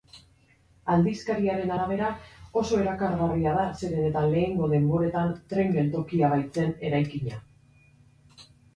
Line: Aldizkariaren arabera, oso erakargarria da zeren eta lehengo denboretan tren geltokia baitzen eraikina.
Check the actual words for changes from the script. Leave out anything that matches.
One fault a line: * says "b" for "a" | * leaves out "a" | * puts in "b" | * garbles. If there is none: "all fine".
all fine